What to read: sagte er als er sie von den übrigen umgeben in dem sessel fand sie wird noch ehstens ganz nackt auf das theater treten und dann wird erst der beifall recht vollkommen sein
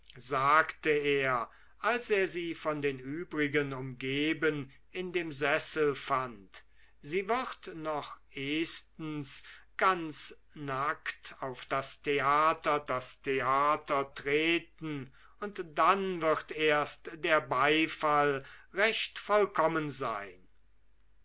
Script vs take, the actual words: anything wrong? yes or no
yes